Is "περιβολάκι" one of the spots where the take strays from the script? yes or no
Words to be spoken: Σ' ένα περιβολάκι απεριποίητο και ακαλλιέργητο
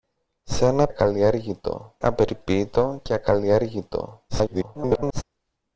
yes